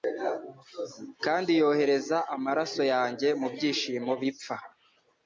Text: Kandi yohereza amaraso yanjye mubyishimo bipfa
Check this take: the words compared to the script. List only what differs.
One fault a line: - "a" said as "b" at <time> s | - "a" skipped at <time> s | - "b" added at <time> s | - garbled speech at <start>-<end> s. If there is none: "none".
none